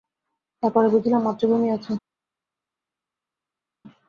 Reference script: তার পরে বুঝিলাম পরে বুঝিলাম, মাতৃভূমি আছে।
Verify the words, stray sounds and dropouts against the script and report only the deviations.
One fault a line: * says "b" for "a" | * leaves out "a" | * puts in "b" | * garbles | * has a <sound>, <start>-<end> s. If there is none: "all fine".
* leaves out "পরে বুঝিলাম"